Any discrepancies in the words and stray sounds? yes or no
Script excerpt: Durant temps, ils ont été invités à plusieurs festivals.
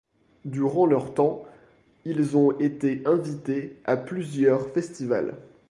yes